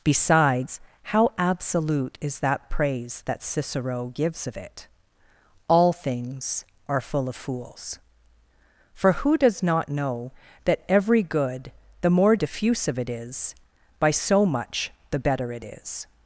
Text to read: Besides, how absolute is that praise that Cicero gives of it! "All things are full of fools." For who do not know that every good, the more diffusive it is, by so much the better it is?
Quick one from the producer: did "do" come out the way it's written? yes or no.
no